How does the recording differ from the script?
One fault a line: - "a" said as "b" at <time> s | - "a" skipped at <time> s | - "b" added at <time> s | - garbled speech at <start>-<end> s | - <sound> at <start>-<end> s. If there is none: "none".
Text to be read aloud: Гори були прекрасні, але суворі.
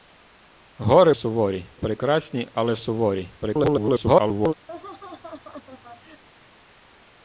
- "були" said as "суворі" at 1.1 s
- garbled speech at 3.4-4.5 s
- laugh at 4.7-6.2 s